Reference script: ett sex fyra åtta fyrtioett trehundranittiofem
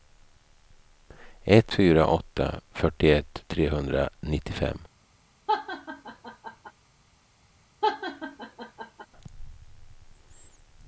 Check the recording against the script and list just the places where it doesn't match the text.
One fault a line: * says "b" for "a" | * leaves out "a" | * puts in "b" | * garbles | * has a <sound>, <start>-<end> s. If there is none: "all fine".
* leaves out "sex"
* has a laugh, 5.5-6.7 s
* has a laugh, 7.8-9.1 s